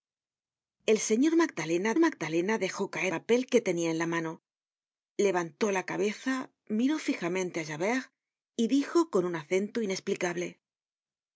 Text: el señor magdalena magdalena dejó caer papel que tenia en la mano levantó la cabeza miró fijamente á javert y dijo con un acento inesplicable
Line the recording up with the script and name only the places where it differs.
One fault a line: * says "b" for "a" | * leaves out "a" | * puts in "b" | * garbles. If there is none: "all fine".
all fine